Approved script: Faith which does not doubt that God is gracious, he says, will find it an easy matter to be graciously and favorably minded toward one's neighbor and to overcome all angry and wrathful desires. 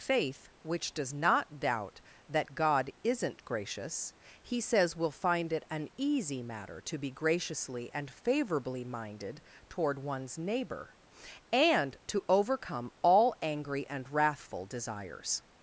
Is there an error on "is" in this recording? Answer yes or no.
yes